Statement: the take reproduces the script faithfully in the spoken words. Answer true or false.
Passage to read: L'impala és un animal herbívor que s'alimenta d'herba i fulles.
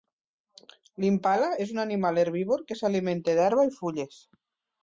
true